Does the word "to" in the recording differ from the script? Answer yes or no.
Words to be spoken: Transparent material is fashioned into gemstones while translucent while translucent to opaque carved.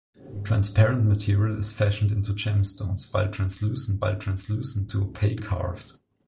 no